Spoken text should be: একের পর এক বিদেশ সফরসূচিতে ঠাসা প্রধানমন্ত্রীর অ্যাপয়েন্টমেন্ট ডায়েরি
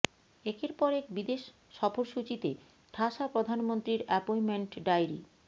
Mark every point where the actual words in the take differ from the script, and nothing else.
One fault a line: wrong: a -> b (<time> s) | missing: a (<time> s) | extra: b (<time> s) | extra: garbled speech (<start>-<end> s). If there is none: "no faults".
no faults